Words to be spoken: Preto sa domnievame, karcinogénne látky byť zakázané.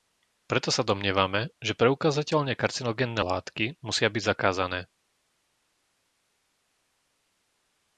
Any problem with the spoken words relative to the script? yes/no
yes